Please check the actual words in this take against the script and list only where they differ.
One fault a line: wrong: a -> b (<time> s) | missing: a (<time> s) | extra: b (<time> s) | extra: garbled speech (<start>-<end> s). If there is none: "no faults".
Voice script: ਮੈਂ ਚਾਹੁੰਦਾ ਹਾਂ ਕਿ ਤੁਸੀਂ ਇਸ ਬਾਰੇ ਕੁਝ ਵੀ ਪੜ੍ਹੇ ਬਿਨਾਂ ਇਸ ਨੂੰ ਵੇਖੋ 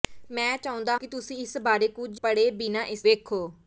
missing: ਹਾਂ (0.9 s)
missing: ਵੀ (2.2 s)
missing: ਨੂੰ (3.1 s)